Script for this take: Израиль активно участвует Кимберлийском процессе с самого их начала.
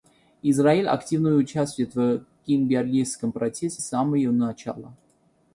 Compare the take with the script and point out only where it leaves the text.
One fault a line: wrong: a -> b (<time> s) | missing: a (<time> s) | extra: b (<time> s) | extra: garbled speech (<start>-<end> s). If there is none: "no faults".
extra: в (1.9 s)
wrong: их -> его (4.1 s)